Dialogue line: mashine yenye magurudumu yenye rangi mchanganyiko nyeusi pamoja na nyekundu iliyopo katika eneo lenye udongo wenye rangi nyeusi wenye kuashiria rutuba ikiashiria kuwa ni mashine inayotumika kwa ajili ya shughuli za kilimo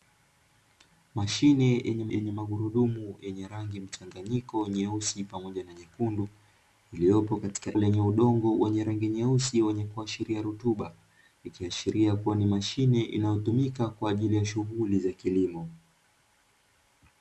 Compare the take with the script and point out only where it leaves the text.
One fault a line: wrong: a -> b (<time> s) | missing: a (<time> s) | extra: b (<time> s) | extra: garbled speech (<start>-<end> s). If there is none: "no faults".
extra: yenye (2.1 s)
missing: eneo (7.8 s)